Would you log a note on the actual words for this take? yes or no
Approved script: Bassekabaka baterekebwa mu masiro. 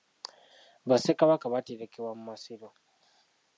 no